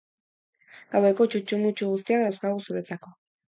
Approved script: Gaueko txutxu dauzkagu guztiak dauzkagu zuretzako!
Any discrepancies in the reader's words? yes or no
yes